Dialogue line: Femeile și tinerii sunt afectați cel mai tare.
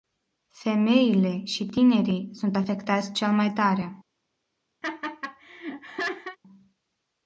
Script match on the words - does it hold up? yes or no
yes